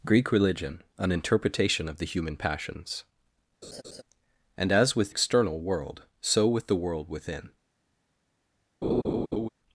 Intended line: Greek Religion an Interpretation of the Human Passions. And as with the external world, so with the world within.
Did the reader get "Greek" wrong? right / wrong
right